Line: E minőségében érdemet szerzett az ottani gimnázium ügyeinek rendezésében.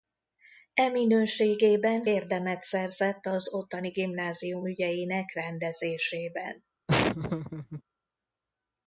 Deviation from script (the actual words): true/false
false